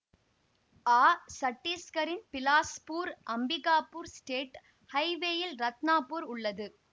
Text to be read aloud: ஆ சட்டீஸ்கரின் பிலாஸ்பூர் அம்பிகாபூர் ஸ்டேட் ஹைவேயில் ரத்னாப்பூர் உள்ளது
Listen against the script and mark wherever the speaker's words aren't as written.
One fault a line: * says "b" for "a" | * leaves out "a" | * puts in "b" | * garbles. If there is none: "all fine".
all fine